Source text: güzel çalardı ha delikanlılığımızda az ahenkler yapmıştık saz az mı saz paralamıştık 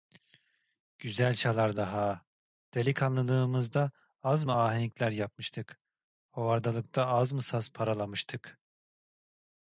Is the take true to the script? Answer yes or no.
no